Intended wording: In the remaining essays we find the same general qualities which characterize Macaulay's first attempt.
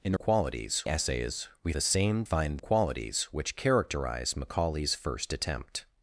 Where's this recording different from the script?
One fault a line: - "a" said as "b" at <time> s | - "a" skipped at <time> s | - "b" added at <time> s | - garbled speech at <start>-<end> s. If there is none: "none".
- "remaining" said as "qualities" at 0.1 s
- "find" skipped at 1.7 s
- "general" said as "find" at 2.2 s